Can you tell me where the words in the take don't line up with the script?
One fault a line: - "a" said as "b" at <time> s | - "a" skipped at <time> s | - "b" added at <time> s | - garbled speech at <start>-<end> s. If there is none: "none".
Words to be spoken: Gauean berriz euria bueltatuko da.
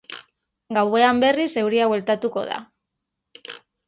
none